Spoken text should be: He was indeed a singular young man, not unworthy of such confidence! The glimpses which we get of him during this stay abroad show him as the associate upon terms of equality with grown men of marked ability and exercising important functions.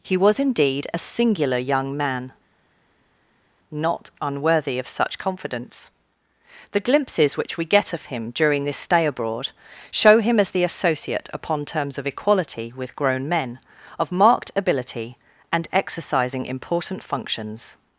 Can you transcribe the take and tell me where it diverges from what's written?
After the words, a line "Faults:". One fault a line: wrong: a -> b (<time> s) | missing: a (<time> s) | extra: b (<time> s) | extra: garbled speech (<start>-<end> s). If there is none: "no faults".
He was indeed a singular young man, not unworthy of such confidence! The glimpses which we get of him during this stay abroad show him as the associate upon terms of equality with grown men of marked ability and exercising important functions.
Faults:
no faults